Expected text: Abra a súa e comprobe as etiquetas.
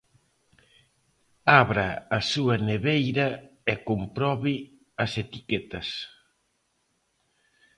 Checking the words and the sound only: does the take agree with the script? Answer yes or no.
no